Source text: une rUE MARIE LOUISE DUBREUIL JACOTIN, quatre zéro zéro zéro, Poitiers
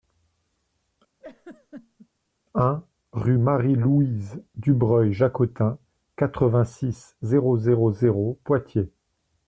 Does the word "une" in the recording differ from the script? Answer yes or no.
yes